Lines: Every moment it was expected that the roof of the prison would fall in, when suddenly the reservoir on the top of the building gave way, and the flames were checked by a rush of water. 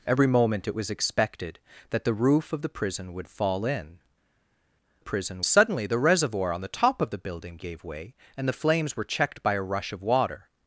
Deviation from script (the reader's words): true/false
true